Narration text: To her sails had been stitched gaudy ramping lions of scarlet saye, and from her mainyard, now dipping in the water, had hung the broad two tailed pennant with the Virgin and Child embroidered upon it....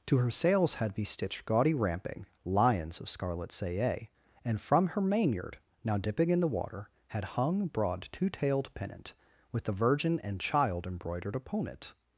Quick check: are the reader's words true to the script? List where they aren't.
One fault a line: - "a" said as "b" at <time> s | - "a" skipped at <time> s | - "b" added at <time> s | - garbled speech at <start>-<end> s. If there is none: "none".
- "been" said as "be" at 0.9 s
- "the" skipped at 7.7 s